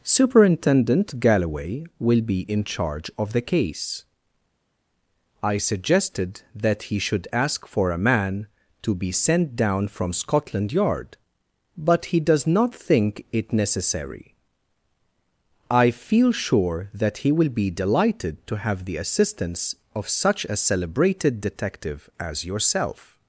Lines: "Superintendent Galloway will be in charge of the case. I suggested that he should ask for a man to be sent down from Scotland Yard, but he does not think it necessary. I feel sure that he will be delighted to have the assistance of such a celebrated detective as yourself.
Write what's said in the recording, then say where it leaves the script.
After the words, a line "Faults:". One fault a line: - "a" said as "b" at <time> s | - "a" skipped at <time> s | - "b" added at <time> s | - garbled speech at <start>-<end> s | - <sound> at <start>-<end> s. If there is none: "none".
"Superintendent Galloway will be in charge of the case. I suggested that he should ask for a man to be sent down from Scotland Yard, but he does not think it necessary. I feel sure that he will be delighted to have the assistance of such a celebrated detective as yourself.
Faults:
none